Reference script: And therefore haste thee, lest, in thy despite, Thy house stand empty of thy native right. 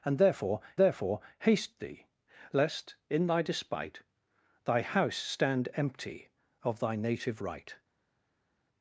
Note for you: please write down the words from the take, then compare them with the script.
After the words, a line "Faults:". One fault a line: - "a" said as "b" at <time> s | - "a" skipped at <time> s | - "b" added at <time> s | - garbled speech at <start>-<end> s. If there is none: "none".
And therefore therefore haste thee, lest, in thy despite, Thy house stand empty of thy native right.
Faults:
- "therefore" added at 0.8 s